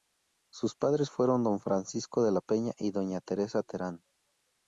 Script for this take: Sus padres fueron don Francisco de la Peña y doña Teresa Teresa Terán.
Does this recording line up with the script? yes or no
no